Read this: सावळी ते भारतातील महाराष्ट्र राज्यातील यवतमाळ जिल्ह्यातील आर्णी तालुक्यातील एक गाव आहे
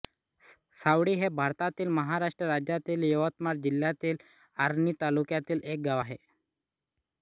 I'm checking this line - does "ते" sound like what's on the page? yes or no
no